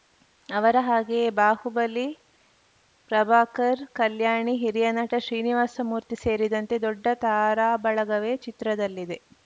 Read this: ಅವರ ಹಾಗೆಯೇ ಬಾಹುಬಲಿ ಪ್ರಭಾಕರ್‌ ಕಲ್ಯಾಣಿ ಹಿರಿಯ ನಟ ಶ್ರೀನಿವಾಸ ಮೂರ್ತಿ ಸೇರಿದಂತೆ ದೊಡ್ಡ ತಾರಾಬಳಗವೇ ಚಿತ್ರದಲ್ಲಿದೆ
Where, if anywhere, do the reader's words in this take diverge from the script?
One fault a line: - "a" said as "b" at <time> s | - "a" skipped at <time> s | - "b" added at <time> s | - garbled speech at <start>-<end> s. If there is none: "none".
none